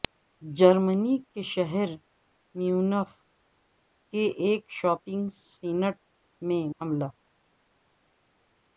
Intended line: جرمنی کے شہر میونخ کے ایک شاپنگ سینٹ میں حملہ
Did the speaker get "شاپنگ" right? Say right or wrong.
right